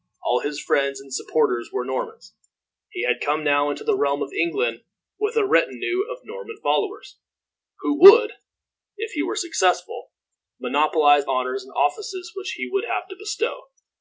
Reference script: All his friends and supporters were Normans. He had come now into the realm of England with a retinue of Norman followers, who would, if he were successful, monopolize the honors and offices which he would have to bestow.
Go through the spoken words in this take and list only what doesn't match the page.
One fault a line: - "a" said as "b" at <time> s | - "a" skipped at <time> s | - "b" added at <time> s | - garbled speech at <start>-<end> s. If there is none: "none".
- "the" skipped at 11.3 s